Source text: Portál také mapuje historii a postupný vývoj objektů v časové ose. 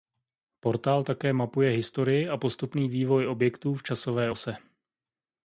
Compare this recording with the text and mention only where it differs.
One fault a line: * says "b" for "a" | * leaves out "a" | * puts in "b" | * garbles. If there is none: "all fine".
all fine